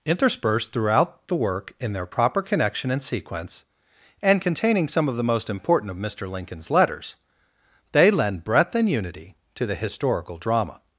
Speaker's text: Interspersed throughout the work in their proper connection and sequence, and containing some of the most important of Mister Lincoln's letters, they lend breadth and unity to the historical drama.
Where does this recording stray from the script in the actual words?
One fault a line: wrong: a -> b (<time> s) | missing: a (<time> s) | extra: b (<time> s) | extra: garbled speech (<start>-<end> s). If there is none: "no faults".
no faults